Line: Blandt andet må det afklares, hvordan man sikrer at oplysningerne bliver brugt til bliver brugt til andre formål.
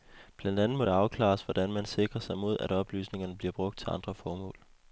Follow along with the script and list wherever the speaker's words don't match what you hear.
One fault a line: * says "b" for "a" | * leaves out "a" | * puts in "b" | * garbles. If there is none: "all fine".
* puts in "sig mod"
* leaves out "bliver brugt til"